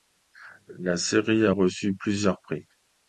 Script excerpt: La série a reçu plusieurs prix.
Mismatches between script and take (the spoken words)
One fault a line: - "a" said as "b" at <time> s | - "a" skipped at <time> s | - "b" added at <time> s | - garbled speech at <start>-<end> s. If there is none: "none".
none